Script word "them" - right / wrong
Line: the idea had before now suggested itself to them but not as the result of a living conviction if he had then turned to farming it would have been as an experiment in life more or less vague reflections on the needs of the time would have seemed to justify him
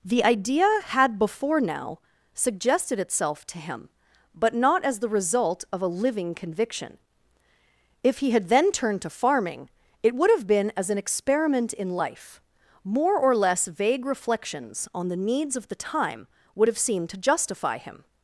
wrong